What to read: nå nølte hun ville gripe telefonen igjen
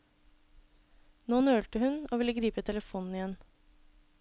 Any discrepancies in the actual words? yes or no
yes